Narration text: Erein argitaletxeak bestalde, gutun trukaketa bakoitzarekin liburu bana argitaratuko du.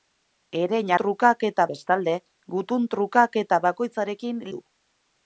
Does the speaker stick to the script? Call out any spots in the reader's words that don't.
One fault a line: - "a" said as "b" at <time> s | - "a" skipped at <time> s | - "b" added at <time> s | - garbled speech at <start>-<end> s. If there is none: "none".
- "argitaletxeak" said as "trukaketa" at 1.0 s
- "liburu bana argitaratuko" skipped at 4.4 s